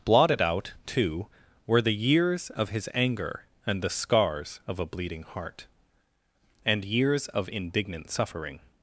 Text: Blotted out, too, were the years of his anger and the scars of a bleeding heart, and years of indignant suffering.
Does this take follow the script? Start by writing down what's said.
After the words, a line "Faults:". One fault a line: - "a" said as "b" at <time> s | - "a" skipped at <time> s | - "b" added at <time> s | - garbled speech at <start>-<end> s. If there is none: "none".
Blotted out, too, were the years of his anger and the scars of a bleeding heart, and years of indignant suffering.
Faults:
none